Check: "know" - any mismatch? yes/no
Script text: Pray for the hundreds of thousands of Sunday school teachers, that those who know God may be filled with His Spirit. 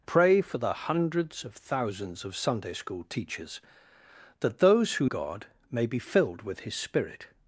yes